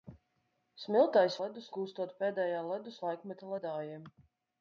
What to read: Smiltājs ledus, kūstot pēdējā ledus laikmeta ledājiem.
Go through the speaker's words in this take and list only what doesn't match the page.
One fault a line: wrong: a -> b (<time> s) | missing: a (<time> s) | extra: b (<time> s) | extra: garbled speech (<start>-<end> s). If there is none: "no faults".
no faults